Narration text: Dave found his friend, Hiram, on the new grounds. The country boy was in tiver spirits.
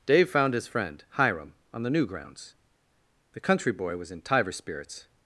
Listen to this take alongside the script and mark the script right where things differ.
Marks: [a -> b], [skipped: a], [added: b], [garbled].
Dave found his friend, Hiram, on the new grounds. The country boy was in tiver spirits.